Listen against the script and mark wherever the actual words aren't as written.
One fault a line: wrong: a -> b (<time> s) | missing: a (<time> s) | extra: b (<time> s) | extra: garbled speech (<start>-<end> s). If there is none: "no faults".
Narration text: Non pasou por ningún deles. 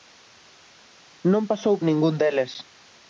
missing: por (1.8 s)